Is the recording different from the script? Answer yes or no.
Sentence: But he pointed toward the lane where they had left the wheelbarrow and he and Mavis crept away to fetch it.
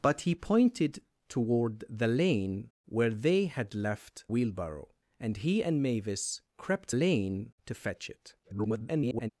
yes